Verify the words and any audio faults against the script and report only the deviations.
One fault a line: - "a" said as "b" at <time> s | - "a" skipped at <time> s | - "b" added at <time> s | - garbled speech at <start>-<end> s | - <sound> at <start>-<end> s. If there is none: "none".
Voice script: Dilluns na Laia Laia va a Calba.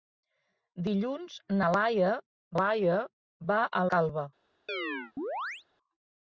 - chirp at 4.7-5.6 s